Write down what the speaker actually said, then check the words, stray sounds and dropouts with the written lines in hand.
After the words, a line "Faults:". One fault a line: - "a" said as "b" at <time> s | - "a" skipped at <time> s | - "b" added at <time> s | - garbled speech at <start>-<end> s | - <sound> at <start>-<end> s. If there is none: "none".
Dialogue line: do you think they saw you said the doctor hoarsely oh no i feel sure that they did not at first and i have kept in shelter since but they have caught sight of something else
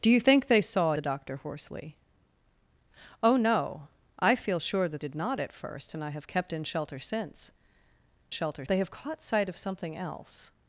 do you think they saw the doctor hoarsely oh no i feel sure that did not at first and i have kept in shelter since shelter they have caught sight of something else
Faults:
- "you said" skipped at 0.9 s
- "they" skipped at 5.0 s
- "but" said as "shelter" at 8.3 s